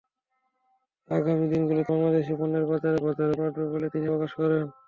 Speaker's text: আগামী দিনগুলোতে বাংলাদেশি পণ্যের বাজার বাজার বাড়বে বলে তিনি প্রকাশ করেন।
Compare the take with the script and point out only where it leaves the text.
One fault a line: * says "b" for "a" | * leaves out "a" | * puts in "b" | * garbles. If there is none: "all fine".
all fine